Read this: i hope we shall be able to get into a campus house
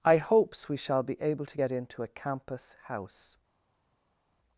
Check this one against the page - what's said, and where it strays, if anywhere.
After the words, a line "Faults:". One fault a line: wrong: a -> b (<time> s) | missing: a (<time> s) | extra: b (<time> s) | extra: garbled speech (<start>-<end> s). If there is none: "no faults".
i hopes we shall be able to get into a campus house
Faults:
wrong: hope -> hopes (0.2 s)